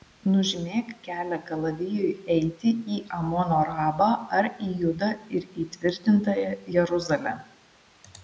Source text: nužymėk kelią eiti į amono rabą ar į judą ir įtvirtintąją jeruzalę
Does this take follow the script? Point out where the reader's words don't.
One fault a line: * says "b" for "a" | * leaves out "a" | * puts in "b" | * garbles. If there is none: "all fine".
* puts in "kalavijui"